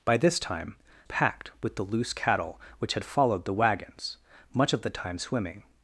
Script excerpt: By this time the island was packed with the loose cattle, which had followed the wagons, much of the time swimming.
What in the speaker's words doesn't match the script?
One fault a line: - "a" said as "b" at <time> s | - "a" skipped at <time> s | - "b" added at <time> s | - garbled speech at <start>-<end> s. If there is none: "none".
- "the island was" skipped at 0.8 s